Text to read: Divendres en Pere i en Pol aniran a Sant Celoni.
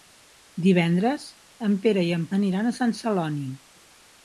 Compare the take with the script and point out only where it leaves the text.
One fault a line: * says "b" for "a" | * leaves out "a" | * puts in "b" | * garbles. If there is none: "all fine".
* leaves out "Pol"